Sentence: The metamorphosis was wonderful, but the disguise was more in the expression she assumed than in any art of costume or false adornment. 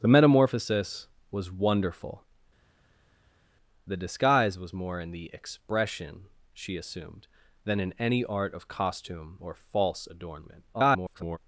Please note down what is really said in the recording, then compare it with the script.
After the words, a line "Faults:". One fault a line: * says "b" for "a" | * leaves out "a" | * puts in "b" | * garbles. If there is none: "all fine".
The metamorphosis was wonderful, the disguise was more in the expression she assumed than in any art of costume or false adornment. [garbled]
Faults:
* leaves out "but"
* garbles